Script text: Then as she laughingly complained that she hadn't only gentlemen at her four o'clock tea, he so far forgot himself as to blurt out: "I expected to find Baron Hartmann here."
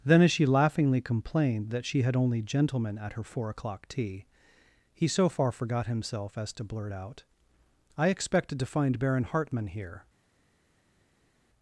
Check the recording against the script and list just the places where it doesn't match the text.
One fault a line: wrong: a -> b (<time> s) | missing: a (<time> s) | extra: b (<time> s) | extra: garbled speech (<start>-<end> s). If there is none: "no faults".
wrong: hadn't -> had (2.0 s)